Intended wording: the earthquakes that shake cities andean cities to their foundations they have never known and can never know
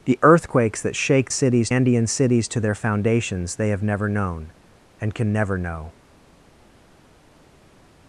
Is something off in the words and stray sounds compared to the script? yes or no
no